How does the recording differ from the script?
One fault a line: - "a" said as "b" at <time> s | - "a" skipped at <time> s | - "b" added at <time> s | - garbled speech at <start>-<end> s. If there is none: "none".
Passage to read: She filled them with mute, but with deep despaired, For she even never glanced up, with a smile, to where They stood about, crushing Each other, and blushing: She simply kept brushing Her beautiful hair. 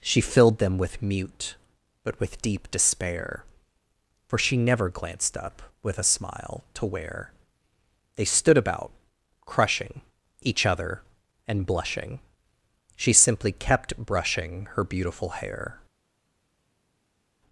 - "despaired" said as "despair" at 2.7 s
- "even" skipped at 4.6 s